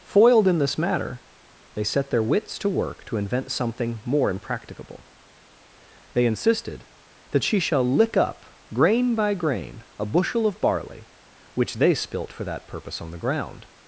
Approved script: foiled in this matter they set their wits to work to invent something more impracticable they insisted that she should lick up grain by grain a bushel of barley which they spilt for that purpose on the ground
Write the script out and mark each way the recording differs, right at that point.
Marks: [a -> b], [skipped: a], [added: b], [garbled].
foiled in this matter they set their wits to work to invent something more impracticable they insisted that she [should -> shall] lick up grain by grain a bushel of barley which they spilt for that purpose on the ground